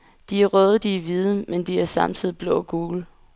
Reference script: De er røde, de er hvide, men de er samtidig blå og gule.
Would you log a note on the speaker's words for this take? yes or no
no